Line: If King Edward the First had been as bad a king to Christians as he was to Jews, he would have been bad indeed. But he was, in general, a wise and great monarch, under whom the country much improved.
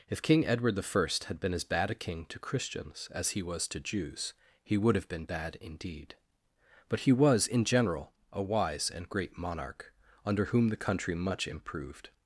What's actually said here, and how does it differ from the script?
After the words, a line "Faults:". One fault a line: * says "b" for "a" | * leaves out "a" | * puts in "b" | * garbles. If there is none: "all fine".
If King Edward the First had been as bad a king to Christians as he was to Jews, he would have been bad indeed. But he was, in general, a wise and great monarch, under whom the country much improved.
Faults:
all fine